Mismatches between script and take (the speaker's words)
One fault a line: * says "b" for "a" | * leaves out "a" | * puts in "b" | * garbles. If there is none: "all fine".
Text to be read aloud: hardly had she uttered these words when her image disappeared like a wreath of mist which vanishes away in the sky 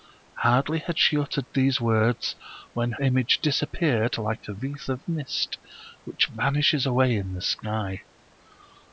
* leaves out "her"